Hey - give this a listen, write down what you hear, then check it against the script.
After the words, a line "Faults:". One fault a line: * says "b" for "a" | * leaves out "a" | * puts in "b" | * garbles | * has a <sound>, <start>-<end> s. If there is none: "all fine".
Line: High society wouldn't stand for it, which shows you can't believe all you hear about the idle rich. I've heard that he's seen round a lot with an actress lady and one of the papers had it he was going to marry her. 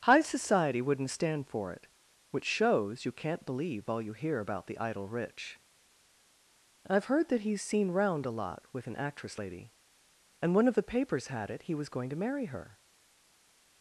High society wouldn't stand for it, which shows you can't believe all you hear about the idle rich. I've heard that he's seen round a lot with an actress lady and one of the papers had it he was going to marry her.
Faults:
all fine